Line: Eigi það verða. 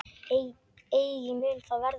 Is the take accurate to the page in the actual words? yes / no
no